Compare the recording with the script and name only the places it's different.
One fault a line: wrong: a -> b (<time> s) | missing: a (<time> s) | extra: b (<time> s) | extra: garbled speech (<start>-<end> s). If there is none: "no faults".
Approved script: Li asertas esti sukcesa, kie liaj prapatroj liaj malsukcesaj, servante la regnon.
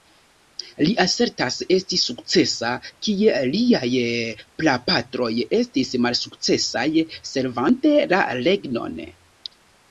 wrong: liaj -> estis (5.6 s)